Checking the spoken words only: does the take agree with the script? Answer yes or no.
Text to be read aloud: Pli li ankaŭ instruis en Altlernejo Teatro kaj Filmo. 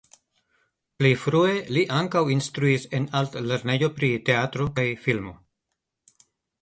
no